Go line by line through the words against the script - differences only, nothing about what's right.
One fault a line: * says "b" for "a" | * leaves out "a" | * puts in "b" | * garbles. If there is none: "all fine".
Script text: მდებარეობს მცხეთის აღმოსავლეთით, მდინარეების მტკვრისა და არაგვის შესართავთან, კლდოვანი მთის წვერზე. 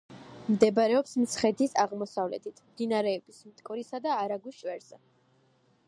* leaves out "შესართავთან კლდოვანი მთის"